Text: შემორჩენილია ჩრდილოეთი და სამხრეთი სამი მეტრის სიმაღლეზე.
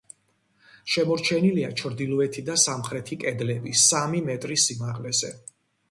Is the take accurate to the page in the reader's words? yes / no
no